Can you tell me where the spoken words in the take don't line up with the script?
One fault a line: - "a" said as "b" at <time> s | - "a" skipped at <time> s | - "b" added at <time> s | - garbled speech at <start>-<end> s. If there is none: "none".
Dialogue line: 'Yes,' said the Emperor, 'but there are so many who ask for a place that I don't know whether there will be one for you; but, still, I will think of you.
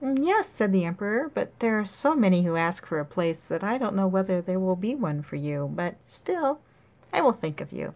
none